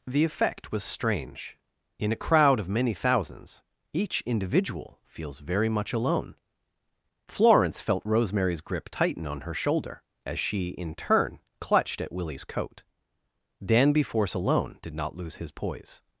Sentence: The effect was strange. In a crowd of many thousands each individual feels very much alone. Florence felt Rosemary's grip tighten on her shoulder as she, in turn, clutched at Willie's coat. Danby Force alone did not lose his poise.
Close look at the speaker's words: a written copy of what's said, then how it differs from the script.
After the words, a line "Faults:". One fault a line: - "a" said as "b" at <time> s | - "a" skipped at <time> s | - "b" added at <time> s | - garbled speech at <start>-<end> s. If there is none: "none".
The effect was strange. In a crowd of many thousands each individual feels very much alone. Florence felt Rosemary's grip tighten on her shoulder as she, in turn, clutched at Willie's coat. Danby Force alone did not lose his poise.
Faults:
none